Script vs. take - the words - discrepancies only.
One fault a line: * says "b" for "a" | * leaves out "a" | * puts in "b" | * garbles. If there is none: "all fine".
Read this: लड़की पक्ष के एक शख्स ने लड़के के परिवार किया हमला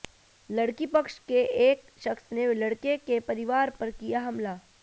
* puts in "पर"